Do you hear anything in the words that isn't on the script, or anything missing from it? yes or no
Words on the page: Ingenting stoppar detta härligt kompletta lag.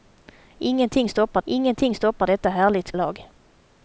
yes